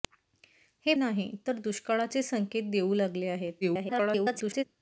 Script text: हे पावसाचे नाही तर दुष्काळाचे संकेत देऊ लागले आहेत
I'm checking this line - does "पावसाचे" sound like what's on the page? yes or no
no